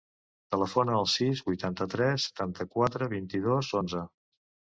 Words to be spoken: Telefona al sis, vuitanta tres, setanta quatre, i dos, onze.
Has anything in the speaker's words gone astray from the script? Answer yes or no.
yes